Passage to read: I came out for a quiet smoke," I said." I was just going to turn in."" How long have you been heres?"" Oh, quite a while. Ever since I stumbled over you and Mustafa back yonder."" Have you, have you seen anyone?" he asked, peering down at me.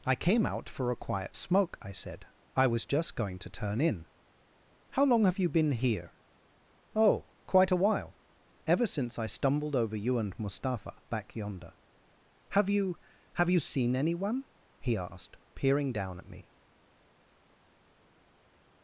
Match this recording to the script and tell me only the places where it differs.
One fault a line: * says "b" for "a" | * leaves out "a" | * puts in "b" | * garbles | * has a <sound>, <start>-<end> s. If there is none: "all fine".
* says "here" for "heres"